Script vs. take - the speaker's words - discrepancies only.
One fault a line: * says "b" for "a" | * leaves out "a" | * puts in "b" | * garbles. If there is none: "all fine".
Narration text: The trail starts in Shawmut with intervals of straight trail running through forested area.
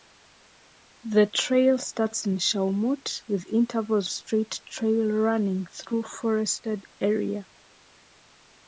* leaves out "of"